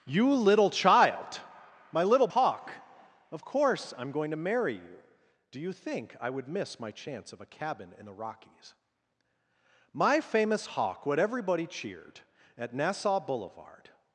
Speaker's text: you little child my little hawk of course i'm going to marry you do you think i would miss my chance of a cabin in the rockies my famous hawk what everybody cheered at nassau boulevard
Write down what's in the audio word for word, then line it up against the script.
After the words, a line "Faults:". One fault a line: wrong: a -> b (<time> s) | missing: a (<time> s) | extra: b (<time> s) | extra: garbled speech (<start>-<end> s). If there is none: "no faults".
you little child my little hawk of course i'm going to marry you do you think i would miss my chance of a cabin in the rockies my famous hawk what everybody cheered at nassau boulevard
Faults:
no faults